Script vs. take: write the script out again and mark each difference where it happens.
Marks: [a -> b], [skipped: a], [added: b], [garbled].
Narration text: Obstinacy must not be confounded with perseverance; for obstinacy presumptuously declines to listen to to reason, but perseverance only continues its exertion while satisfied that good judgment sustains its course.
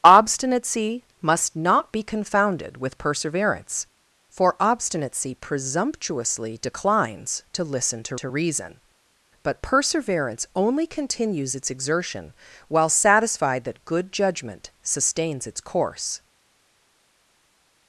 Obstinacy must not be confounded with perseverance; for obstinacy presumptuously declines to listen to to reason, but perseverance only continues its exertion while satisfied that good judgment sustains its course.